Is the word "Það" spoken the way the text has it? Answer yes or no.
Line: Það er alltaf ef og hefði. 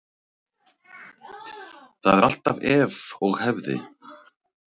yes